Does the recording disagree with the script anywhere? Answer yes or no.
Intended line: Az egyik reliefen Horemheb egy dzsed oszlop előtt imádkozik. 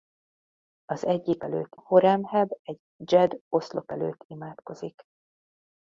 yes